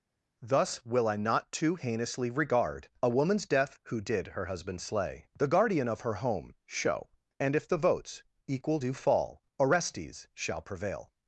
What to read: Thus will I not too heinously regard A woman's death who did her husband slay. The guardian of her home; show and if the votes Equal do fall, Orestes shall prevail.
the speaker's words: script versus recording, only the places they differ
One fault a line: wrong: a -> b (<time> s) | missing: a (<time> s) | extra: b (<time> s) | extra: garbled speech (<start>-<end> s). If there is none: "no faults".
no faults